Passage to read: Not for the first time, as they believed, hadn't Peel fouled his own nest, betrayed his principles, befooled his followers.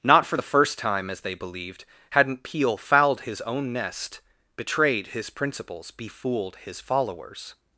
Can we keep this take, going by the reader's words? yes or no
yes